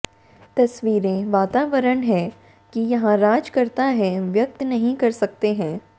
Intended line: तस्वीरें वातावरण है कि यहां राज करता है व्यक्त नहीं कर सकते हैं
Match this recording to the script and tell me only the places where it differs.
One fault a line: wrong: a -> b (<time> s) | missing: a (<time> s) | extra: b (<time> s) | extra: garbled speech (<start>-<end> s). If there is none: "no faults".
no faults